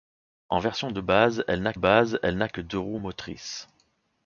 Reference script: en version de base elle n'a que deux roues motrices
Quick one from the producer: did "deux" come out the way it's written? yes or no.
yes